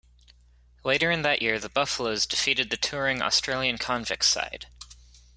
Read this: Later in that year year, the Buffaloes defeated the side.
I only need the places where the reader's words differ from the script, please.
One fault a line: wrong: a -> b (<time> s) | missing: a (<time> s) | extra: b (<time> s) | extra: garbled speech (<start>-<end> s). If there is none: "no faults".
missing: year (1.6 s)
extra: touring Australian Convicts (2.8 s)